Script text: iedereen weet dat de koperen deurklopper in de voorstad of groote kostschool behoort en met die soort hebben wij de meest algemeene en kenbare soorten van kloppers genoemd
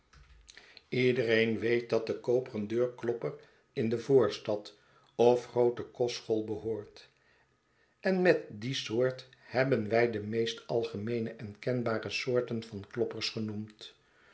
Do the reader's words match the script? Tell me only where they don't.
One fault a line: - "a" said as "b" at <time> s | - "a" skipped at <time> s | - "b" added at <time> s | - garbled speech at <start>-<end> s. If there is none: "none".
none